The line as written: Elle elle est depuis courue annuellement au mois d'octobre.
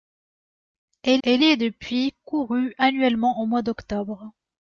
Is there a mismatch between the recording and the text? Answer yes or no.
no